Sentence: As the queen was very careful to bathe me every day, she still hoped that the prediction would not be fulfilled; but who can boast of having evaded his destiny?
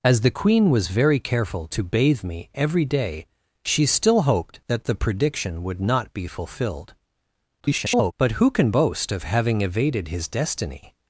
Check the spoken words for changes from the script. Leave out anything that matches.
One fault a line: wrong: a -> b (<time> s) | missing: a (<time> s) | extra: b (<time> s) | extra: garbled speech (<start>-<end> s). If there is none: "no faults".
extra: garbled speech (7.6-8.1 s)